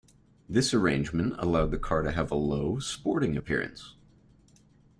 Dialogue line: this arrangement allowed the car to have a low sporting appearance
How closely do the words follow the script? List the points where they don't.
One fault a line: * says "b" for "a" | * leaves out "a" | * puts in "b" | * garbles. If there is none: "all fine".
all fine